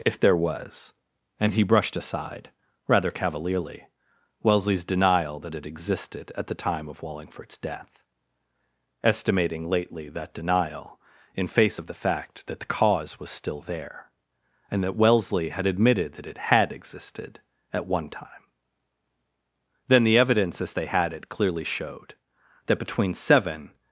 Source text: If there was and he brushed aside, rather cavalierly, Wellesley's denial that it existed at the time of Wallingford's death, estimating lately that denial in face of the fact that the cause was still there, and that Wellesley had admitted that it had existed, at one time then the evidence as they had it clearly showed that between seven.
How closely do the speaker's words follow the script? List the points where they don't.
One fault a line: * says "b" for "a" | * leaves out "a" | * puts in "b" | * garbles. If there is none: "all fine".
all fine